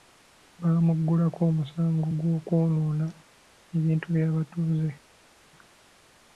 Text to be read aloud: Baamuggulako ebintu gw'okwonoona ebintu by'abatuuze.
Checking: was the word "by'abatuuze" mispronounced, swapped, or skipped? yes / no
no